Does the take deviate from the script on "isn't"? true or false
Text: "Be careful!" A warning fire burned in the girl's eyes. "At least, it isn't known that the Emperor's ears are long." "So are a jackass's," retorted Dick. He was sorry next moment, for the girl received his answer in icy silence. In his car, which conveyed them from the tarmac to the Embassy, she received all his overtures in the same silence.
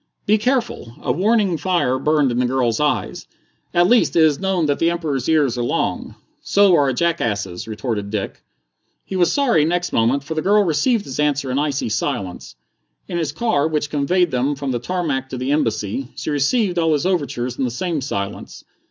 true